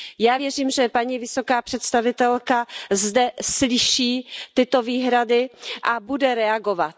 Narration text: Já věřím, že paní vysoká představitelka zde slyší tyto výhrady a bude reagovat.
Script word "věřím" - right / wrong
right